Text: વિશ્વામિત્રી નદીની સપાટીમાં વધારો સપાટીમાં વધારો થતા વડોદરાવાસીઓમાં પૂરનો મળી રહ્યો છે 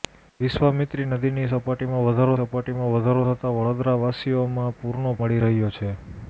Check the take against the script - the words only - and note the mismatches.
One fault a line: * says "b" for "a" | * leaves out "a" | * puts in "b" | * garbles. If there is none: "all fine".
all fine